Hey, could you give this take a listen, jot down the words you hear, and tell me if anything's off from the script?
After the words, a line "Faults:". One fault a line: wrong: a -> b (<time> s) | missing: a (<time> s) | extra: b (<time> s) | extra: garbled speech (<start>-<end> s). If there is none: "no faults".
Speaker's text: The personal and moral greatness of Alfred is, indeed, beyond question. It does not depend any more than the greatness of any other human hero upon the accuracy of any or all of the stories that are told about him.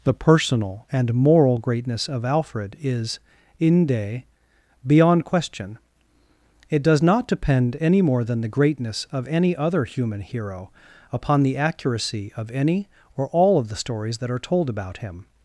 The personal and moral greatness of Alfred is, inde, beyond question. It does not depend any more than the greatness of any other human hero upon the accuracy of any or all of the stories that are told about him.
Faults:
wrong: indeed -> inde (3.6 s)